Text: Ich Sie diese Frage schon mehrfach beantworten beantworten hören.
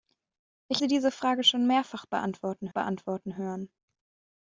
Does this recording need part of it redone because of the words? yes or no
no